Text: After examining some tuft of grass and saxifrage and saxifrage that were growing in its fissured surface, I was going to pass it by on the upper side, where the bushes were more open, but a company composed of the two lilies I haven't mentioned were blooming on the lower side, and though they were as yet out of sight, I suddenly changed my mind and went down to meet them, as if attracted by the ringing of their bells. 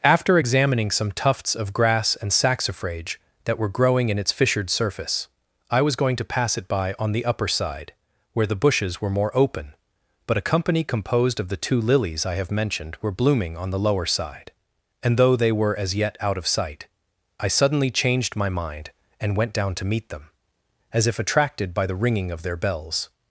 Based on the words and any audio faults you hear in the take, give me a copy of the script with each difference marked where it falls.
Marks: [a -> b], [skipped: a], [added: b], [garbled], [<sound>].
After examining some [tuft -> tufts] of grass and saxifrage [skipped: and saxifrage] that were growing in its fissured surface, I was going to pass it by on the upper side, where the bushes were more open, but a company composed of the two lilies I [haven't -> have] mentioned were blooming on the lower side, and though they were as yet out of sight, I suddenly changed my mind and went down to meet them, as if attracted by the ringing of their bells.